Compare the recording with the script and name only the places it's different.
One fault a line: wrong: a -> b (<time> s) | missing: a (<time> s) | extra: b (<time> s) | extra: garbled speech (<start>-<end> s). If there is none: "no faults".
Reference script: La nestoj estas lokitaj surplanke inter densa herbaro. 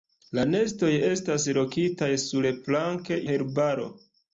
missing: inter densa (3.2 s)